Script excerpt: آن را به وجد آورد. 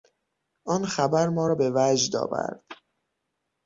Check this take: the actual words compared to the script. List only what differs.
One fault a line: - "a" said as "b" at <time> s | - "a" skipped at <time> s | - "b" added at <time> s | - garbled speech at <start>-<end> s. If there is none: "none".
- "خبر ما" added at 0.8 s